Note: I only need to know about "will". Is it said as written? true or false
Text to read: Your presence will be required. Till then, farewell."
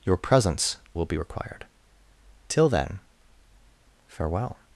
true